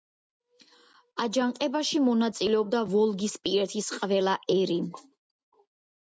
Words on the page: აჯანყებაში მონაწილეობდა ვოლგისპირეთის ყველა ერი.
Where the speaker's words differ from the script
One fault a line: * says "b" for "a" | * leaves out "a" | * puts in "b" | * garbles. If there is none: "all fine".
all fine